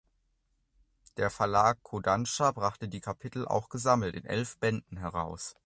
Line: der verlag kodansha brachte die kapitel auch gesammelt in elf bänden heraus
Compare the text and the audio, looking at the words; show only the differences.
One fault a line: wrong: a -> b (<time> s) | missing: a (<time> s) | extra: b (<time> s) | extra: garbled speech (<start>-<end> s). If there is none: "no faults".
no faults